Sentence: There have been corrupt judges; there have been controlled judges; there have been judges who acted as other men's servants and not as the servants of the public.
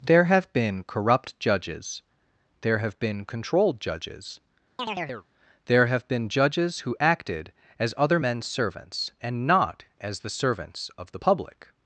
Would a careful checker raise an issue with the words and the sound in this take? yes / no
yes